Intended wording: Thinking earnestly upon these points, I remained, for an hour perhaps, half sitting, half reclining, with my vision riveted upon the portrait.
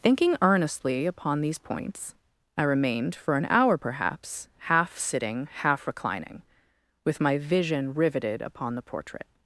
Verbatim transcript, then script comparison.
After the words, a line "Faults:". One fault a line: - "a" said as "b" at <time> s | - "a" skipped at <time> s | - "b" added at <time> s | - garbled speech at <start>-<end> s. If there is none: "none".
Thinking earnestly upon these points, I remained, for an hour perhaps, half sitting, half reclining, with my vision riveted upon the portrait.
Faults:
none